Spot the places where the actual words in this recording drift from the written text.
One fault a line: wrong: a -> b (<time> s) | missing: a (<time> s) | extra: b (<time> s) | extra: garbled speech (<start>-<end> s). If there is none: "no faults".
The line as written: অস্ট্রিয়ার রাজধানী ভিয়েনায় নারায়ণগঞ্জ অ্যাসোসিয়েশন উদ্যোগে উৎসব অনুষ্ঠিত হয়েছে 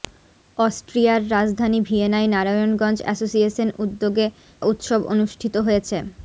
no faults